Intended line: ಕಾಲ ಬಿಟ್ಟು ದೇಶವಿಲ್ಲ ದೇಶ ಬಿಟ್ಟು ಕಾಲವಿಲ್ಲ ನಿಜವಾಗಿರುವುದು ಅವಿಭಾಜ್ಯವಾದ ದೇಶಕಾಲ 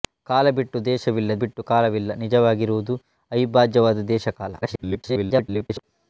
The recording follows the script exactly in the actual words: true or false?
false